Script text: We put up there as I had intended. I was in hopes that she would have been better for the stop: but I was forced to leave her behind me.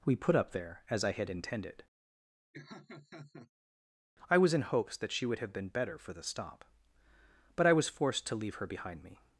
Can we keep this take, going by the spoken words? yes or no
yes